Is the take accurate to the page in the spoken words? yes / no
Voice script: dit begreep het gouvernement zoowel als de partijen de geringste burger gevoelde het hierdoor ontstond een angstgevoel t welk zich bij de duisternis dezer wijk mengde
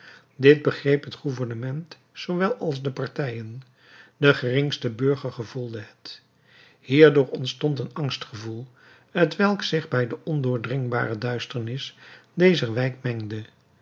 no